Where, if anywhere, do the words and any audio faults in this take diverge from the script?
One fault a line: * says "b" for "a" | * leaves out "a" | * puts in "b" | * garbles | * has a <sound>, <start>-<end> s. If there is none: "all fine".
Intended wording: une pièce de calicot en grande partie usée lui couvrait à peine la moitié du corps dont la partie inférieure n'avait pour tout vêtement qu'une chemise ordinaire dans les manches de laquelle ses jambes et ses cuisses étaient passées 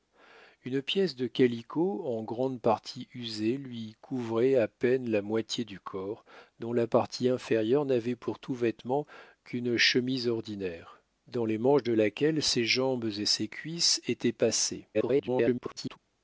* garbles